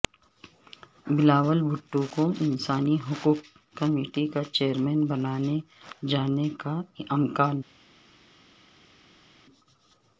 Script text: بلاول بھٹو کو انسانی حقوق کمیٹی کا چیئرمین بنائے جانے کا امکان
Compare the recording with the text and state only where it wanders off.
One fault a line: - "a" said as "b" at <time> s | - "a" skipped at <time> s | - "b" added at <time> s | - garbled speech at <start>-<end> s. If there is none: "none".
none